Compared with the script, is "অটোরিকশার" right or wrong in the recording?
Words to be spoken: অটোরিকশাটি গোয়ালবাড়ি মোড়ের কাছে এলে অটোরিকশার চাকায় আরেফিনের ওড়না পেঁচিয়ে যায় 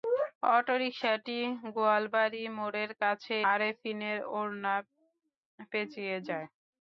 wrong